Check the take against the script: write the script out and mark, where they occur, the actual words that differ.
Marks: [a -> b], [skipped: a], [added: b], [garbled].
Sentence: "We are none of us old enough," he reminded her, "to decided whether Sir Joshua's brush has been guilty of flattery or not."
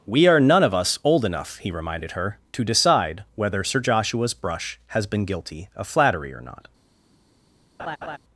"We are none of us old enough," he reminded her, "to [decided -> decide] whether Sir Joshua's brush has been guilty of flattery or not."